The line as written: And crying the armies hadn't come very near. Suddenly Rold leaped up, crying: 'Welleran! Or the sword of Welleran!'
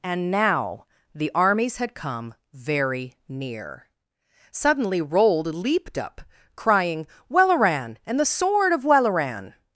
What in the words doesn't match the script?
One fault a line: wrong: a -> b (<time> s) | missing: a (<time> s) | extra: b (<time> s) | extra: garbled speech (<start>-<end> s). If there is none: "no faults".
wrong: crying -> now (0.3 s)
wrong: hadn't -> had (1.8 s)
wrong: Or -> And (8.1 s)